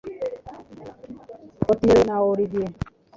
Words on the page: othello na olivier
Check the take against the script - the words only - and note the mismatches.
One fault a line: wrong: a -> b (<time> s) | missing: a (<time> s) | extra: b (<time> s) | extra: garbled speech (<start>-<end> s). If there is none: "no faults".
no faults